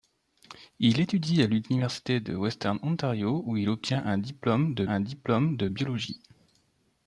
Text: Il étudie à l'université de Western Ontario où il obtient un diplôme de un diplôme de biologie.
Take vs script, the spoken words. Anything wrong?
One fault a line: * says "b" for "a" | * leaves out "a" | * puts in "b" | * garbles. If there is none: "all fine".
all fine